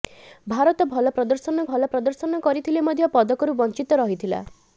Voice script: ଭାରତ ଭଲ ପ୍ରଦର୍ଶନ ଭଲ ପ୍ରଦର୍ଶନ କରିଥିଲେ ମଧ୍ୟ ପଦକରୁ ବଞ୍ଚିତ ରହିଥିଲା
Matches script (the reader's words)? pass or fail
pass